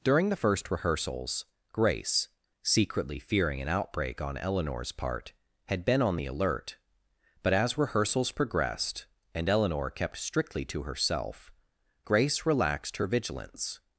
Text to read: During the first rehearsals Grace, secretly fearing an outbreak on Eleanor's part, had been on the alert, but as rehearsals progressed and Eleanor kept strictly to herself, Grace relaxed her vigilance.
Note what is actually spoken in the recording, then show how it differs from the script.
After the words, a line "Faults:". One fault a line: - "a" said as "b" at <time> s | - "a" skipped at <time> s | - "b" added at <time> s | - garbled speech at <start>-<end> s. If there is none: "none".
During the first rehearsals Grace, secretly fearing an outbreak on Eleanor's part, had been on the alert, but as rehearsals progressed and Eleanor kept strictly to herself, Grace relaxed her vigilance.
Faults:
none